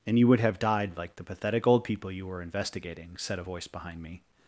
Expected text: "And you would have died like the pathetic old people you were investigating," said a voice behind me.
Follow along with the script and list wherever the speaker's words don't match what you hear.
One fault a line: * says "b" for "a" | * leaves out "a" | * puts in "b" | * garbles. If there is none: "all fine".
all fine